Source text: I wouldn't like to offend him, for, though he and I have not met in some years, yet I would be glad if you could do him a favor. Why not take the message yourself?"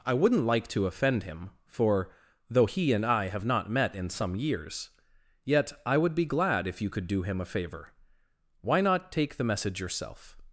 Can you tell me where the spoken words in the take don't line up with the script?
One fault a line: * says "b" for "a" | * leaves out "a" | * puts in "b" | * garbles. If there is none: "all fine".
all fine